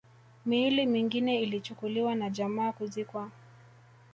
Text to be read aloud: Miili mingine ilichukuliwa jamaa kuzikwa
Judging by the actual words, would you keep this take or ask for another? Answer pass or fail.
fail